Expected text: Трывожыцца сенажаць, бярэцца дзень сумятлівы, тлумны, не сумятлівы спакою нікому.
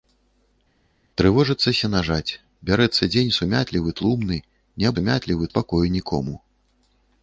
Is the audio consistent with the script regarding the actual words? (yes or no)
yes